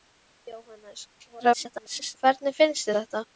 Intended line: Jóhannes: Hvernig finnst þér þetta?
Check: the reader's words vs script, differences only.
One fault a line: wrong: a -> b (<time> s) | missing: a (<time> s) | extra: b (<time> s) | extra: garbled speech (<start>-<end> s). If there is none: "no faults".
extra: garbled speech (1.3-2.2 s)
missing: þér (2.9 s)